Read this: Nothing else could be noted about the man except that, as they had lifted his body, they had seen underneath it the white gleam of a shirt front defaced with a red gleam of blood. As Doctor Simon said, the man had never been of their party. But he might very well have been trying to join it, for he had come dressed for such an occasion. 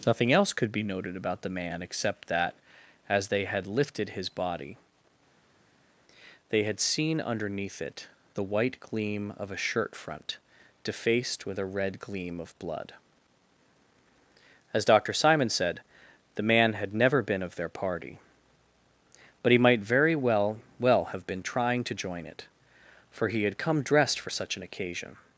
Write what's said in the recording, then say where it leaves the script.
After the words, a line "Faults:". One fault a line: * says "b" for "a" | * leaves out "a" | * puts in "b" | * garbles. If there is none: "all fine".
Nothing else could be noted about the man except that, as they had lifted his body, they had seen underneath it the white gleam of a shirt front defaced with a red gleam of blood. As Doctor Simon said, the man had never been of their party. But he might very well well have been trying to join it, for he had come dressed for such an occasion.
Faults:
* puts in "well"